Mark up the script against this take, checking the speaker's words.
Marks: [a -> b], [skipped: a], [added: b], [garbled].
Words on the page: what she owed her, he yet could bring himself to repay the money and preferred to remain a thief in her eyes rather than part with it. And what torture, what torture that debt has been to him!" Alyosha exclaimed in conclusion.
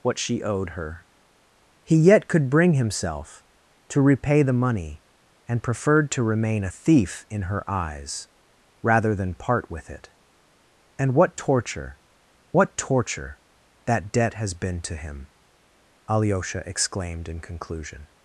what she owed her, he yet could bring himself to repay the money and preferred to remain a thief in her eyes rather than part with it. And what torture, what torture that debt has been to him!" Alyosha exclaimed in conclusion.